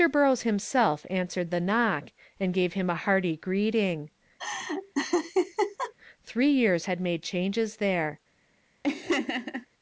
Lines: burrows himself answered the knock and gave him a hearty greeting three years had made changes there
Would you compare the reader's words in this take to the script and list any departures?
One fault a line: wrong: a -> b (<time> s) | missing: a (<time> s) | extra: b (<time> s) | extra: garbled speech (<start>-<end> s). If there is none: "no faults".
no faults